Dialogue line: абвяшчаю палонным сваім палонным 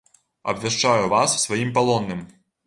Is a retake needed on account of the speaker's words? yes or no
yes